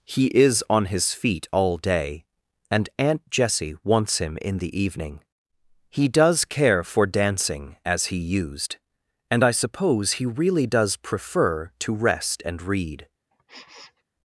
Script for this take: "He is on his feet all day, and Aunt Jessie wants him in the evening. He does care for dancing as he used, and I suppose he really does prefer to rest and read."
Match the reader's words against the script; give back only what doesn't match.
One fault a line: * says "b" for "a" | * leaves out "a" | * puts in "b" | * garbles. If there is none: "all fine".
all fine